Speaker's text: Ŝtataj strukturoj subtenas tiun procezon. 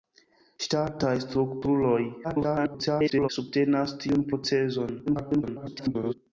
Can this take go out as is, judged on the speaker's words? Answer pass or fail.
fail